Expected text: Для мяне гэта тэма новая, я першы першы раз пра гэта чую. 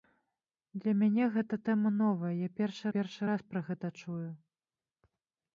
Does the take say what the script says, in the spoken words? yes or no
yes